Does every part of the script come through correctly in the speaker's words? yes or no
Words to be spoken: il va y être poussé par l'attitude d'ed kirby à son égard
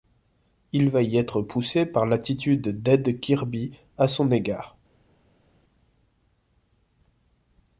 yes